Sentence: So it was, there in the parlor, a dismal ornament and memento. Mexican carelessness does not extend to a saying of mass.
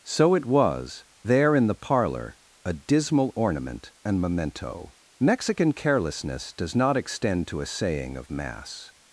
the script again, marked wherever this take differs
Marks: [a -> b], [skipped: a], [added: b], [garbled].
So it was, there in the parlor, a dismal ornament and memento. Mexican carelessness does not extend to a saying of mass.